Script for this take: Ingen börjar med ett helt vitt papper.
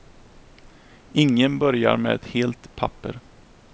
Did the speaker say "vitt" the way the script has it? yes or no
no